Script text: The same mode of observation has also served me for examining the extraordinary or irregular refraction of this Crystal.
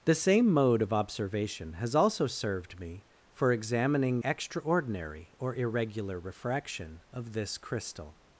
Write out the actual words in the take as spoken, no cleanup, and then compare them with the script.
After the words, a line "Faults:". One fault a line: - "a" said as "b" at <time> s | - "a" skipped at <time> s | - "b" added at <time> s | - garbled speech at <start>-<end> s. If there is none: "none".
The same mode of observation has also served me for examining extraordinary or irregular refraction of this Crystal.
Faults:
- "the" skipped at 4.2 s